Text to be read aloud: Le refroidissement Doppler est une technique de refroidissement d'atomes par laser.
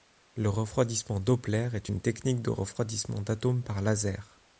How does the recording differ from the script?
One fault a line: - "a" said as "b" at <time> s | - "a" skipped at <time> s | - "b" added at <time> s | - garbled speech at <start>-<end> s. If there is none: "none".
none